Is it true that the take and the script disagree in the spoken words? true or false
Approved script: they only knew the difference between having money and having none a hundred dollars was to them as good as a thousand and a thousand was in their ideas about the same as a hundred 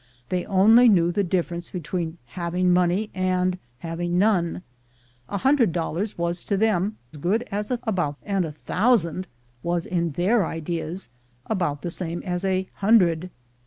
true